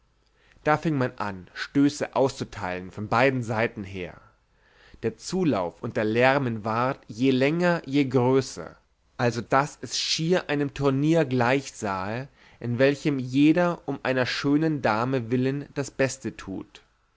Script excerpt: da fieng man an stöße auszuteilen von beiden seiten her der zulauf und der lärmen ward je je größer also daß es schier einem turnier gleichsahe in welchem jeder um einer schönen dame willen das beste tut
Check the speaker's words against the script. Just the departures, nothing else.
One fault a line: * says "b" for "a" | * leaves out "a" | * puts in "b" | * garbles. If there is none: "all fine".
* puts in "länger"